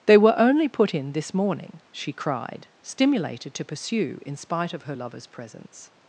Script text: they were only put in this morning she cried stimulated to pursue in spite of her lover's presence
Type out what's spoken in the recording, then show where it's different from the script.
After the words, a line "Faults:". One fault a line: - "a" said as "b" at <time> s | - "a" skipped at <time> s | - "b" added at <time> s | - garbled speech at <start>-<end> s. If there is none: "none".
they were only put in this morning she cried stimulated to pursue in spite of her lover's presence
Faults:
none